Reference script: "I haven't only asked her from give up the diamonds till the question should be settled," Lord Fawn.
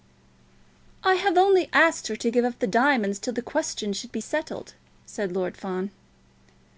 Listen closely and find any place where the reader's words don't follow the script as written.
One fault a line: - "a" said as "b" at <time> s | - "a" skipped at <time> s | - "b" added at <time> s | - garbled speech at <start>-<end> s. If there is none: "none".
- "haven't" said as "have" at 1.1 s
- "from" said as "to" at 2.1 s
- "said" added at 5.1 s